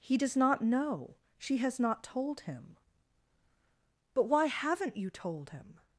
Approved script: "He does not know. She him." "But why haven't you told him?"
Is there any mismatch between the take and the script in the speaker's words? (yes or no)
yes